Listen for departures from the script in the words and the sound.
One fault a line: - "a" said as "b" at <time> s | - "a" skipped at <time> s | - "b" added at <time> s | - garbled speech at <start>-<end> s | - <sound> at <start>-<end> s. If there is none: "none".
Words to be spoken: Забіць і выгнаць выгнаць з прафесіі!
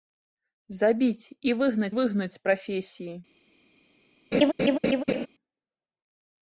- laugh at 4.3-5.3 s